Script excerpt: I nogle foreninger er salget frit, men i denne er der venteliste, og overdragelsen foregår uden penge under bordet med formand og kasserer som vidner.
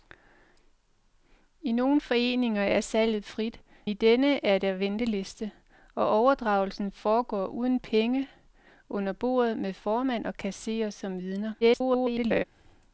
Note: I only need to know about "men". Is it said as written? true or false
false